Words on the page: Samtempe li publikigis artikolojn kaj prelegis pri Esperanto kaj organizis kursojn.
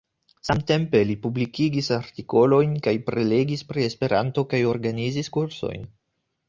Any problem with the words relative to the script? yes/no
no